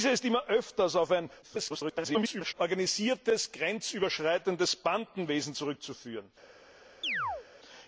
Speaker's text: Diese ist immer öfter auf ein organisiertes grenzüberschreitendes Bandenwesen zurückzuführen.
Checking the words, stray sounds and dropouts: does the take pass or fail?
fail